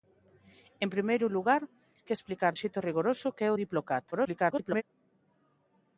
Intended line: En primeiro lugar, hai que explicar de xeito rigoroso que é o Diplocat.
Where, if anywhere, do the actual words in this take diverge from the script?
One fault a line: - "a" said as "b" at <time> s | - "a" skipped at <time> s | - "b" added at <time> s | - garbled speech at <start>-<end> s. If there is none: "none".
- "hai" skipped at 1.6 s
- "de" skipped at 2.5 s
- garbled speech at 4.1-4.8 s